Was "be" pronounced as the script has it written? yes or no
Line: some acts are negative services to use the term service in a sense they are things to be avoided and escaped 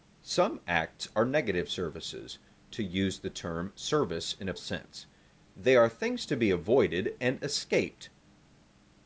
yes